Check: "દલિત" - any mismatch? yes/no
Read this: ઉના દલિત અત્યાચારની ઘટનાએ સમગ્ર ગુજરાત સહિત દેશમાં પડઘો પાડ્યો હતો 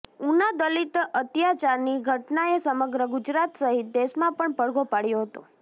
no